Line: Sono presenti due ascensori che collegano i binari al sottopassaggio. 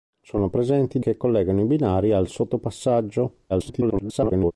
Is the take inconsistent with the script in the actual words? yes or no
yes